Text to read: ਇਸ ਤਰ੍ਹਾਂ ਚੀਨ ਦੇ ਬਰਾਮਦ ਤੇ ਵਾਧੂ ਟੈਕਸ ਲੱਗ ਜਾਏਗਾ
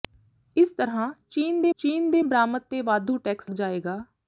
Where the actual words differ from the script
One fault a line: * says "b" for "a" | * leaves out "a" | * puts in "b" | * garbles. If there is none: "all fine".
* puts in "ਚੀਨ ਦੇ"
* leaves out "ਲੱਗ"